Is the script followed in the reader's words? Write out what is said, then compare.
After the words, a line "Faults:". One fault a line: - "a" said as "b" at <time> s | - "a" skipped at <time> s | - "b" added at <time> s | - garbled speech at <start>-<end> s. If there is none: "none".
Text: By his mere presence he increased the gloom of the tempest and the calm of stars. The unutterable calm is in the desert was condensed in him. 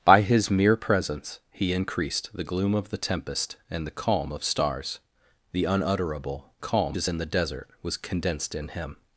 By his mere presence he increased the gloom of the tempest and the calm of stars. The unutterable calm is in the desert was condensed in him.
Faults:
none